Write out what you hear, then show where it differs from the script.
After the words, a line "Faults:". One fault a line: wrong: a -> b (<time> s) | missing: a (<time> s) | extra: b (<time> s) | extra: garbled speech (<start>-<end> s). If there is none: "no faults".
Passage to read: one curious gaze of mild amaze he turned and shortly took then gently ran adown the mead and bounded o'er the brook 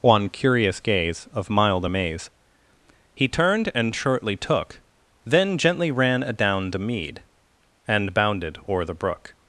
one curious gaze of mild amaze he turned and shortly took then gently ran adown the mead and bounded o'er the brook
Faults:
no faults